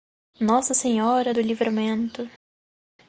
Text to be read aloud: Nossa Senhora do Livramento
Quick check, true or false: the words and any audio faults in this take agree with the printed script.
true